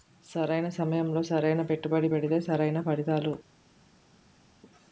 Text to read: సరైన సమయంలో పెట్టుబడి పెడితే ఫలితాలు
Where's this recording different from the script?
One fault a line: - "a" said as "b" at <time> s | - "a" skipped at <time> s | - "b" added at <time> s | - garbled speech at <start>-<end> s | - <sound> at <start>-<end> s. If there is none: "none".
- "సరైన" added at 1.2 s
- "సరైన" added at 2.4 s